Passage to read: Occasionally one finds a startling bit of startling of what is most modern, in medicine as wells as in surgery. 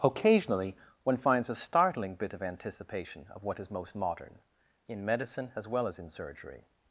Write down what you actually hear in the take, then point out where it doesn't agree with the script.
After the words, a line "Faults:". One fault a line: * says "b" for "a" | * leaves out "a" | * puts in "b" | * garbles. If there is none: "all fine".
Occasionally one finds a startling bit of anticipation of what is most modern, in medicine as well as in surgery.
Faults:
* says "anticipation" for "startling"
* says "well" for "wells"